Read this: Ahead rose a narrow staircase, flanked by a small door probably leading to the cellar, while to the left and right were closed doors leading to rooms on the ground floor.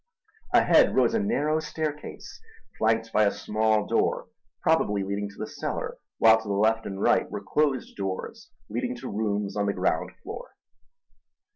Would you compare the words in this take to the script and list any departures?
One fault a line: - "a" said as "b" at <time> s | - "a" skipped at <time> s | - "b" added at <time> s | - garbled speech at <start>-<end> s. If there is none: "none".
none